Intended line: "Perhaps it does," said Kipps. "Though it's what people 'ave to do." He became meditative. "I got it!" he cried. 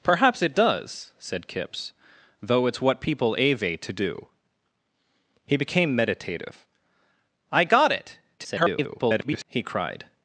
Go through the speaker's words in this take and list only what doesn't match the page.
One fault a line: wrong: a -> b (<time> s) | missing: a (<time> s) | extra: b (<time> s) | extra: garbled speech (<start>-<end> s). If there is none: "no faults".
extra: garbled speech (8.4-9.4 s)